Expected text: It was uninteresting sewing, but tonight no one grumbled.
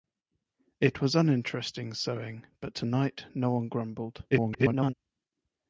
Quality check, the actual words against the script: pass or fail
fail